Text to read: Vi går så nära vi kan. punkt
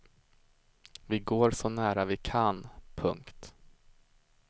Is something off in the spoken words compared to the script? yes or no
no